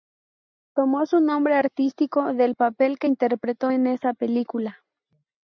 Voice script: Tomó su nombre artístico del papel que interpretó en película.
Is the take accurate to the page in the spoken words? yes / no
no